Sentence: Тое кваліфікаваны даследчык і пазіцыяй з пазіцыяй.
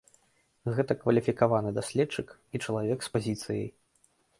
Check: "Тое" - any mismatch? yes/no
yes